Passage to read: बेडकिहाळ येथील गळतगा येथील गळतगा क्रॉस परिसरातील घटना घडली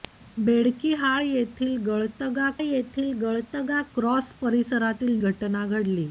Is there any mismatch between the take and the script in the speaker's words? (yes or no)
no